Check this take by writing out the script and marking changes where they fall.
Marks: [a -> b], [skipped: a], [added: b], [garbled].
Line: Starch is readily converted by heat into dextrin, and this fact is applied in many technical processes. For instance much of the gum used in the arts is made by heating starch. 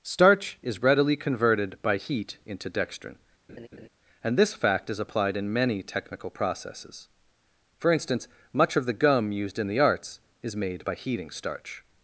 Starch is readily converted by heat into dextrin, and this fact is applied in many technical processes. For instance much of the gum used in the arts is made by heating starch.